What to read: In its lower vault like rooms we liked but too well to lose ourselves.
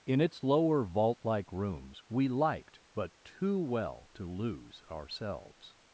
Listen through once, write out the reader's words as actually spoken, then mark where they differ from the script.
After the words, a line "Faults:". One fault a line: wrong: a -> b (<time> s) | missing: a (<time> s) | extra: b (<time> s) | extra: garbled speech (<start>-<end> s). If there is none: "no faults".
In its lower vault like rooms we liked but too well to lose ourselves.
Faults:
no faults